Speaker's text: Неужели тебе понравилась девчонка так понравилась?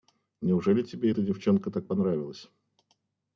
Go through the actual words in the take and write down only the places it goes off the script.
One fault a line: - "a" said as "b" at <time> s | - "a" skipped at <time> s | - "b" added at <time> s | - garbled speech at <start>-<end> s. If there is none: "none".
- "понравилась" said as "эта" at 1.1 s